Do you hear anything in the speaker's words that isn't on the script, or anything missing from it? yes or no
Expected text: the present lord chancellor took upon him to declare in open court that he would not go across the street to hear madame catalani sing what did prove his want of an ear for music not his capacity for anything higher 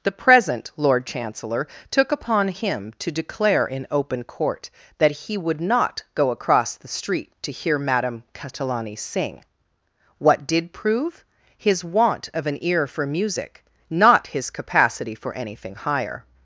no